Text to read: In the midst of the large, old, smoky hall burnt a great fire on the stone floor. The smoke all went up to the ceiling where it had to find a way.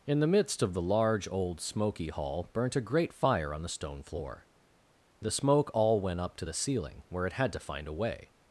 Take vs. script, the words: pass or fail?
pass